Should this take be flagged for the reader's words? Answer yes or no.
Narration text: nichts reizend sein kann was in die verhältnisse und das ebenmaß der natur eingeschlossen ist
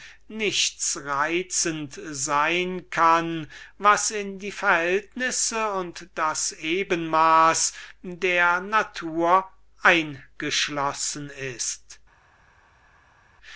no